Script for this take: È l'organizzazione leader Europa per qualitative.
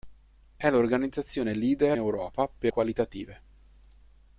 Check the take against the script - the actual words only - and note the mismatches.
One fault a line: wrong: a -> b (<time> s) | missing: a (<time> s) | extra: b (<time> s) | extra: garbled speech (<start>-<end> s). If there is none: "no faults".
no faults